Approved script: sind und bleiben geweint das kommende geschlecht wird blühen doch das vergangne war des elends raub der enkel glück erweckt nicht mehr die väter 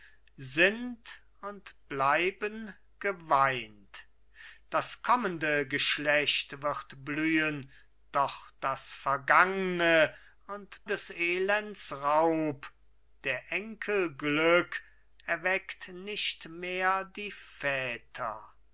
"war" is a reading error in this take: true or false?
true